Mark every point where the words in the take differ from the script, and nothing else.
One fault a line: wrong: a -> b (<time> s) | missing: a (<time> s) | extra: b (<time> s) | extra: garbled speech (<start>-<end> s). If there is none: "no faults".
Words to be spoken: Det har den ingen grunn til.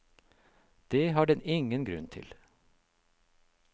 no faults